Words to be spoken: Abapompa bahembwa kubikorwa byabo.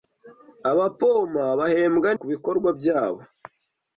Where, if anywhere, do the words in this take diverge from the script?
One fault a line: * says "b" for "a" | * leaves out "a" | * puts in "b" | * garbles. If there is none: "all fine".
all fine